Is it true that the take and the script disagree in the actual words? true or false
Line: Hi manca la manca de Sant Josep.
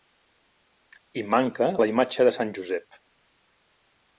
true